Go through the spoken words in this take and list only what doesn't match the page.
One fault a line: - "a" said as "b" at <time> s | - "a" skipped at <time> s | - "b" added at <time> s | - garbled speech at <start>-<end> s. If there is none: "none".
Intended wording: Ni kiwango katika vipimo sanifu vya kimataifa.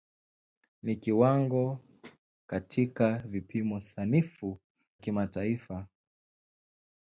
- "vya" skipped at 4.6 s